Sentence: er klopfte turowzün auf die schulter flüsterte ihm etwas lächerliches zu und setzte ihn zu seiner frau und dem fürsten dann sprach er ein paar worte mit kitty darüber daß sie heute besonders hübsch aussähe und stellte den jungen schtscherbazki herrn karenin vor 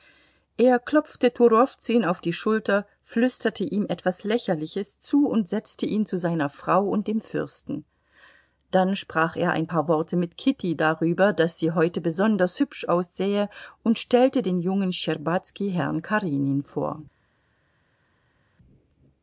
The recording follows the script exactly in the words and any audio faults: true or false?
true